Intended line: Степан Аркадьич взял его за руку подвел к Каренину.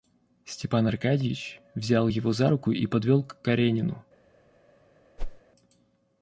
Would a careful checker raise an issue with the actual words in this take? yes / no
yes